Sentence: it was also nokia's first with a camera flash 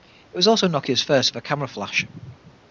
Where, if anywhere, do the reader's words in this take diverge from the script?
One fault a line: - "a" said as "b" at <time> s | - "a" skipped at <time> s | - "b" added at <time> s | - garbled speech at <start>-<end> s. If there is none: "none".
none